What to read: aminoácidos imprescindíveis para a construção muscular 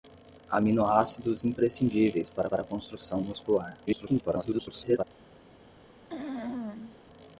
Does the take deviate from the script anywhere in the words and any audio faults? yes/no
yes